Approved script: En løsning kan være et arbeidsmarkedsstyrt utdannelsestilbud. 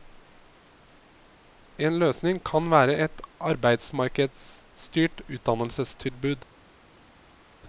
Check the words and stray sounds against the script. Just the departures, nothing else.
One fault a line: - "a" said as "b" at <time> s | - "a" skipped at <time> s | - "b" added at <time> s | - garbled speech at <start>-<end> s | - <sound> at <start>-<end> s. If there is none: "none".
none